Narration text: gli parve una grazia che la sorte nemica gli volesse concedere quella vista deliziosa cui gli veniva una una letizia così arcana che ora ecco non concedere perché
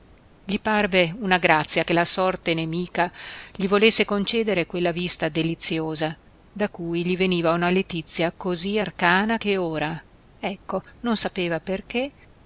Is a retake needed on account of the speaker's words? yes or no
yes